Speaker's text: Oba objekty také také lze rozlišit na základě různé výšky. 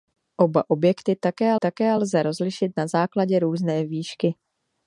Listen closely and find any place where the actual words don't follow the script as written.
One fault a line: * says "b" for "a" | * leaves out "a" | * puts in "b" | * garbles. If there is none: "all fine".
all fine